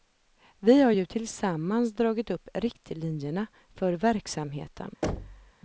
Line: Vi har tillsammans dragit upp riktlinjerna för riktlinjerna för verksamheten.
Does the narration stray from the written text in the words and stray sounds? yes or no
yes